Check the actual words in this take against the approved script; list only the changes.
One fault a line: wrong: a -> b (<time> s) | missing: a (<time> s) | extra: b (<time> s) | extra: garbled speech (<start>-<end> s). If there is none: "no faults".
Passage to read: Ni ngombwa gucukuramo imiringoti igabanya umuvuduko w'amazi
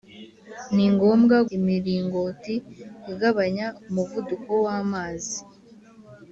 missing: gucukuramo (1.4 s)